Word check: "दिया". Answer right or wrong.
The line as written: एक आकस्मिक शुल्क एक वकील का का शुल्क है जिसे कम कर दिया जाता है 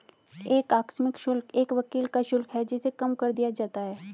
right